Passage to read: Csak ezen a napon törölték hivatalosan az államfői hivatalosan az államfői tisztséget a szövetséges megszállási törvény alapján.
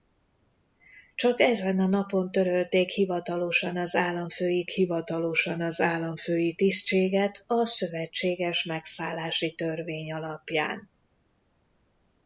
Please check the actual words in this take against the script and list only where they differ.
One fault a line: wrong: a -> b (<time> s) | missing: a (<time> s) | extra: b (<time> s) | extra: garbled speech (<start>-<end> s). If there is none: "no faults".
no faults